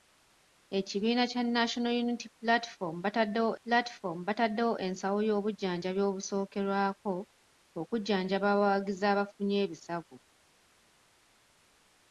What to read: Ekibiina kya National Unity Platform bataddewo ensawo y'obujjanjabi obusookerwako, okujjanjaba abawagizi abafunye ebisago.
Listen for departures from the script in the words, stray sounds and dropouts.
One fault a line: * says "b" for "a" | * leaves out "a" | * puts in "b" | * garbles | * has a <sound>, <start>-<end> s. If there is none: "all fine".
* puts in "Platform bataddewo"